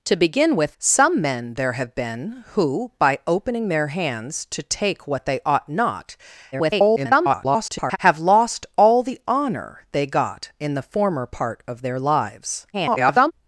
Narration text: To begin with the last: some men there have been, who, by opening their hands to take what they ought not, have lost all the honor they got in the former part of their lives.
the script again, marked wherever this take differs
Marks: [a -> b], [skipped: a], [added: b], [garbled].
To begin with [skipped: the last:] some men there have been, who, by opening their hands to take what they ought not, [garbled] have lost all the honor they got in the former part of their lives. [garbled]